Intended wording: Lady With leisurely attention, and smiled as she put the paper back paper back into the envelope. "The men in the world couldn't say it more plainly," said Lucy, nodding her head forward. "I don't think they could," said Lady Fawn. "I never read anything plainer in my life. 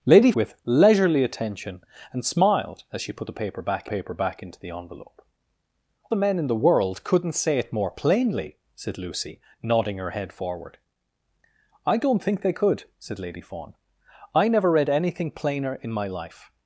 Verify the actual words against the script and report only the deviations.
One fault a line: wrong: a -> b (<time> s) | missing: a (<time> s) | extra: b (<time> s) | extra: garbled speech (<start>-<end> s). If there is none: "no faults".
no faults